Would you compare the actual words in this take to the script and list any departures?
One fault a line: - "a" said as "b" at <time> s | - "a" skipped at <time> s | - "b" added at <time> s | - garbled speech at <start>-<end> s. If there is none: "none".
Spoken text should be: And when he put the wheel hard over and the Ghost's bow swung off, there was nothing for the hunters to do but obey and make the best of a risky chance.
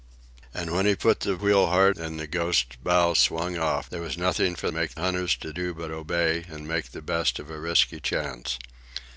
- "over" skipped at 1.9 s
- "the" said as "make" at 4.7 s